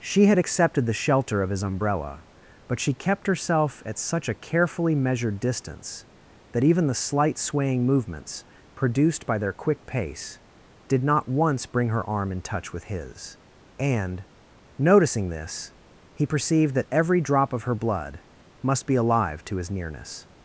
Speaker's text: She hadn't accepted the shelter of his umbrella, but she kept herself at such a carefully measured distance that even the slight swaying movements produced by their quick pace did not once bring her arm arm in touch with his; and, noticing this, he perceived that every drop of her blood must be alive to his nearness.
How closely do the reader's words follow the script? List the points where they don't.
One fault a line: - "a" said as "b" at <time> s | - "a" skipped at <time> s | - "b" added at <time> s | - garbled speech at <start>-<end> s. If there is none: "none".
- "hadn't" said as "had" at 0.2 s
- "arm" skipped at 12.3 s